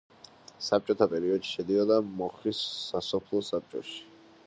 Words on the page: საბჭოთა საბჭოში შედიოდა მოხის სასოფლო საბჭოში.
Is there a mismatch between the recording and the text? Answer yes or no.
yes